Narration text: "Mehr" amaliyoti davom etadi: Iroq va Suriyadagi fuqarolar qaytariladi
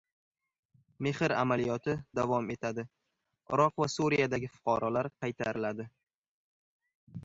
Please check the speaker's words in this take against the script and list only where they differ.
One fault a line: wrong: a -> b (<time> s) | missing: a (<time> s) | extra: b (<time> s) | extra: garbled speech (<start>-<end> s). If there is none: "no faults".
no faults